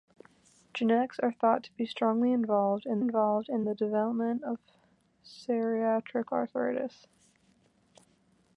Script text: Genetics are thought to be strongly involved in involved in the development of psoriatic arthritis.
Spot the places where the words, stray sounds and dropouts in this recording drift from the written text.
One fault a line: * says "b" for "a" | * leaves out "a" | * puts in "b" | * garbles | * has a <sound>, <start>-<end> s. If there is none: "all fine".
all fine